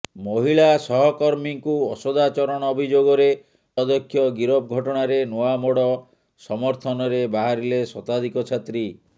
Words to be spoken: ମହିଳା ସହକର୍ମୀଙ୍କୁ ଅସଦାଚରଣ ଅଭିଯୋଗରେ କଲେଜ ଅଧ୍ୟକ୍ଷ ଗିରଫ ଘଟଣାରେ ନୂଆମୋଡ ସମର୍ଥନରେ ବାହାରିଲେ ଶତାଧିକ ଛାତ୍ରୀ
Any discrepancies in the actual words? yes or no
yes